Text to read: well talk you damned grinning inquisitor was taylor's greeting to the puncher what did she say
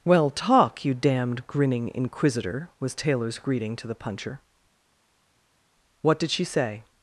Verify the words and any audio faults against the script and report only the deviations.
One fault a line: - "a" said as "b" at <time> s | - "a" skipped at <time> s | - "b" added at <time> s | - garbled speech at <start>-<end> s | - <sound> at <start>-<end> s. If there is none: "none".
none